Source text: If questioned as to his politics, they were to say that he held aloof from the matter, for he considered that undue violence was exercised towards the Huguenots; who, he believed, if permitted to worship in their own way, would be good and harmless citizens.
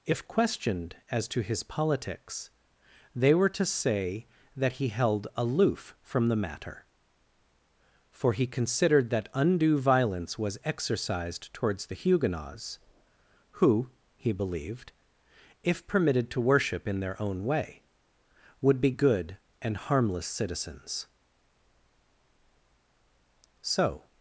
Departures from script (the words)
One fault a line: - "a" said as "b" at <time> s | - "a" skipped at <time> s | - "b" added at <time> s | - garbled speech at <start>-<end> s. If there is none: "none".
- "So" added at 23.6 s